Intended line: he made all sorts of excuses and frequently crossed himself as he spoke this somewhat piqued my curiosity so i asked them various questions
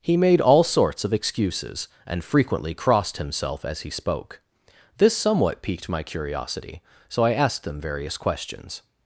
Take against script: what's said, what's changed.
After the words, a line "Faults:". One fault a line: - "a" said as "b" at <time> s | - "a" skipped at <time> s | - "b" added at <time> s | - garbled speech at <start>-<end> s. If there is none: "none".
he made all sorts of excuses and frequently crossed himself as he spoke this somewhat piqued my curiosity so i asked them various questions
Faults:
none